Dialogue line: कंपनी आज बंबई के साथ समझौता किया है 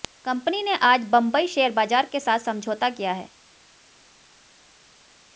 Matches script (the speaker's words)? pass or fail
fail